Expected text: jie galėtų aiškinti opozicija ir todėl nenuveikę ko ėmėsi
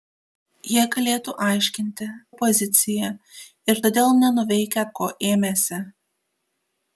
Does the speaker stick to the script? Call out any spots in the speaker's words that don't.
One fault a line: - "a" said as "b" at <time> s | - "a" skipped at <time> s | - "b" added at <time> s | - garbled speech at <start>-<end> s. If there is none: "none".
none